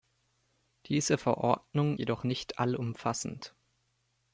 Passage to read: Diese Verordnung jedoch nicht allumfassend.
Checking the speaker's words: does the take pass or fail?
pass